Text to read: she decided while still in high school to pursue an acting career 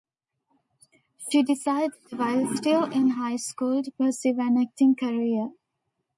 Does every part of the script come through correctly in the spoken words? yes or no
yes